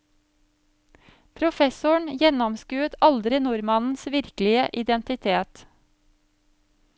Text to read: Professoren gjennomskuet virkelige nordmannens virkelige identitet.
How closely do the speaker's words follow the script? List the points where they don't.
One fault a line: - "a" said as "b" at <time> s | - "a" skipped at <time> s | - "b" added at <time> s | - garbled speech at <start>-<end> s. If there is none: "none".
- "virkelige" said as "aldri" at 3.1 s